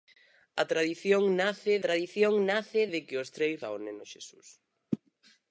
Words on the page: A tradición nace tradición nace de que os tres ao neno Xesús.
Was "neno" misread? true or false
false